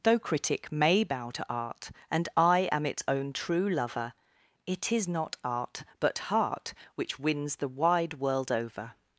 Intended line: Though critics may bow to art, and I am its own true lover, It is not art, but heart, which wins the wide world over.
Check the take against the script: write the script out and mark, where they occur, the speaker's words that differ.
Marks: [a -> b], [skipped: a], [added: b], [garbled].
Though [critics -> critic] may bow to art, and I am its own true lover, It is not art, but heart, which wins the wide world over.